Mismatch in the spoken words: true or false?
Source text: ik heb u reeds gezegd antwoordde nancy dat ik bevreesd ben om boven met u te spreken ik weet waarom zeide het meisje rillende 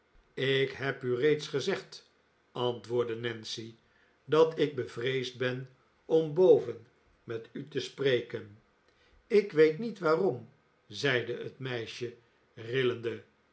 true